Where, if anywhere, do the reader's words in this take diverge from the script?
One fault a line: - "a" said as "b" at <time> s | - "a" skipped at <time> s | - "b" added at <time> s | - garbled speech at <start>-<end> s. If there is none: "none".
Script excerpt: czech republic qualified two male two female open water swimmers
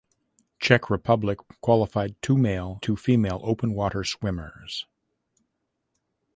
none